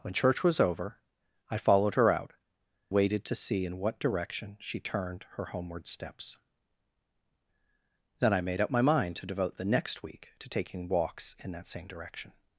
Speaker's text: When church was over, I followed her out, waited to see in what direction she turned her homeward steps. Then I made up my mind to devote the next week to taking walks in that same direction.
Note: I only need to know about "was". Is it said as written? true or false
true